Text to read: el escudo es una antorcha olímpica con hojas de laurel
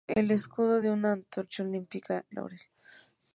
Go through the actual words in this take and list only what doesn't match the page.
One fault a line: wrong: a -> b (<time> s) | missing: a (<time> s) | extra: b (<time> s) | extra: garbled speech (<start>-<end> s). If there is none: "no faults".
missing: con hojas de (2.3 s)